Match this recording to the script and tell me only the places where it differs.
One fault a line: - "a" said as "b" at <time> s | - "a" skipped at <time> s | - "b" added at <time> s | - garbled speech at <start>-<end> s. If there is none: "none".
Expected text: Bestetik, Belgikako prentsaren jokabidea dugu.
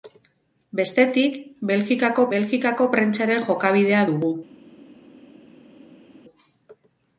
- "Belgikako" added at 2.3 s